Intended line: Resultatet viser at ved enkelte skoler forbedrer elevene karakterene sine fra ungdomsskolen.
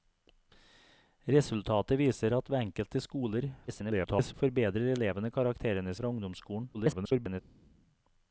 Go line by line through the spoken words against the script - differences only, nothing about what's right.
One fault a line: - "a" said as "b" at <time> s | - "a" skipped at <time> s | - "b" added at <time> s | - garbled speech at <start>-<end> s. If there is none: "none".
- garbled speech at 3.7-4.3 s
- "sine" skipped at 5.9 s
- garbled speech at 6.7-7.4 s